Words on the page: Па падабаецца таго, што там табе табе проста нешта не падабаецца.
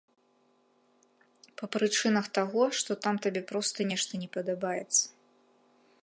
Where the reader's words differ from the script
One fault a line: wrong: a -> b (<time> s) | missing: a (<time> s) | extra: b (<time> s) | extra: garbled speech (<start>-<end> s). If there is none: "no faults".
wrong: падабаецца -> прычынах (1.8 s)
missing: табе (3.4 s)